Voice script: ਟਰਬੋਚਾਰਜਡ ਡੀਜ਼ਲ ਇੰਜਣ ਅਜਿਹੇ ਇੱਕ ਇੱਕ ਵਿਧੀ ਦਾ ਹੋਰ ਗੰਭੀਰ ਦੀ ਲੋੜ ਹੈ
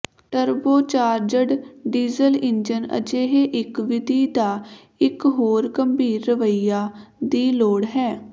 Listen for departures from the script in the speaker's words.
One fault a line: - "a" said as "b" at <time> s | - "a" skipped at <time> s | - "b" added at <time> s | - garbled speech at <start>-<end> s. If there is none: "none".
- "ਇੱਕ" skipped at 3.8 s
- "ਇੱਕ" added at 5.0 s
- "ਰਵੱਈਆ" added at 6.3 s